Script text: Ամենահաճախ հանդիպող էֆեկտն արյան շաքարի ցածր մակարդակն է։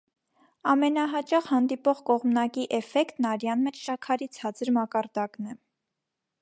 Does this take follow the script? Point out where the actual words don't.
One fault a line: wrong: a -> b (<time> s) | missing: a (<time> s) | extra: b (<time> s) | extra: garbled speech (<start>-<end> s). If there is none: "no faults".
extra: կողմնակի (2.1 s)
extra: մեջ (3.7 s)